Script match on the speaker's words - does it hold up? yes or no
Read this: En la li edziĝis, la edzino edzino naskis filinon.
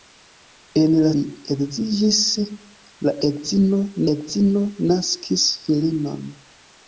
yes